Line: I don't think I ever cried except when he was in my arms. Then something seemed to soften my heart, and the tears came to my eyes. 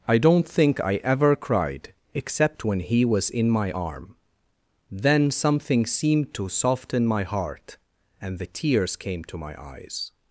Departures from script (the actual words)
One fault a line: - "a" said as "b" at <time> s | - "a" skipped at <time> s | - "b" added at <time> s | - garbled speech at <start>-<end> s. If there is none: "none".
- "arms" said as "arm" at 3.7 s